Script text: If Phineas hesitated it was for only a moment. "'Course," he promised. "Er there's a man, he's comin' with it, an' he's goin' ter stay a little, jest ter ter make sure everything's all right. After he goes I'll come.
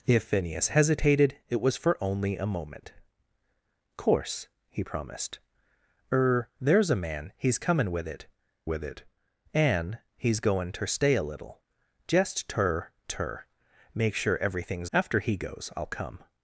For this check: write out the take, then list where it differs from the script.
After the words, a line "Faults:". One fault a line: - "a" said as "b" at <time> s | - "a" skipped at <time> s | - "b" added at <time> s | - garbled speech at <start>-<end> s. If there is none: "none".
If Phineas hesitated it was for only a moment. "'Course," he promised. "Er there's a man, he's comin' with it with it, an' he's goin' ter stay a little, jest ter ter make sure everything's. After he goes I'll come.
Faults:
- "with it" added at 8.7 s
- "all right" skipped at 14.9 s